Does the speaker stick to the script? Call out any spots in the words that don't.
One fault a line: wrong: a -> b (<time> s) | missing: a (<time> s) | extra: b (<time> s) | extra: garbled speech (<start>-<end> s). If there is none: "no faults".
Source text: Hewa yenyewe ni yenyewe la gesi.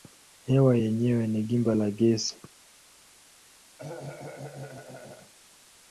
wrong: yenyewe -> gimba (1.4 s)